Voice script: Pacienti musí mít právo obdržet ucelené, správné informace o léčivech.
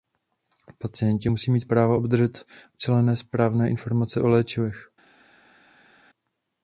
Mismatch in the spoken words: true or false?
false